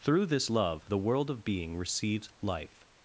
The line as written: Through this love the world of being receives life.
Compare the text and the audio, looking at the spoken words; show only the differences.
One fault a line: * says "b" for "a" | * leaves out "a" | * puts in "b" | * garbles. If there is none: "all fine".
all fine